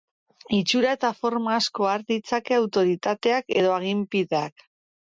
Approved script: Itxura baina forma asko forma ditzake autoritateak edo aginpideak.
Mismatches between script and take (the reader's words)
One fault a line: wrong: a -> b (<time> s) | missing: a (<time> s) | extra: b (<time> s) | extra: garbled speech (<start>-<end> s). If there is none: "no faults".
wrong: baina -> eta (1.0 s)
wrong: forma -> har (1.9 s)